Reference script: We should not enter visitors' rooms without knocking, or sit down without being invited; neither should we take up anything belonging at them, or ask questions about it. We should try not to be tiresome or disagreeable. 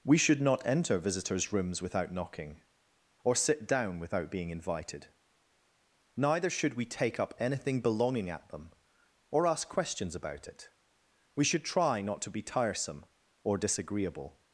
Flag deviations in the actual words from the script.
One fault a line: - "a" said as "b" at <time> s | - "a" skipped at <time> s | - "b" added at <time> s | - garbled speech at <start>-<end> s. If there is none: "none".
none